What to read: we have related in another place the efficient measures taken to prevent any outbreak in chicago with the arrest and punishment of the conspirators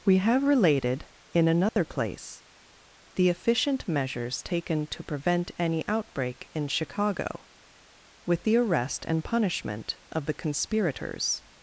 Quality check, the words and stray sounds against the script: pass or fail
fail